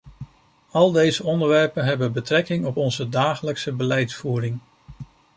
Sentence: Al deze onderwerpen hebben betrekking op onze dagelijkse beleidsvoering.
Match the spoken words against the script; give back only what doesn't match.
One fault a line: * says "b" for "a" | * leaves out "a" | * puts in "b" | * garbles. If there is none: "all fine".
all fine